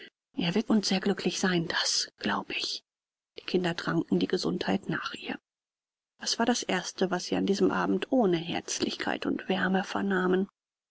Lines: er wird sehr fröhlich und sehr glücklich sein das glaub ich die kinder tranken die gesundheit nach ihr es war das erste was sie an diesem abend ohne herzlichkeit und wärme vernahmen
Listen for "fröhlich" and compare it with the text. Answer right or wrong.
wrong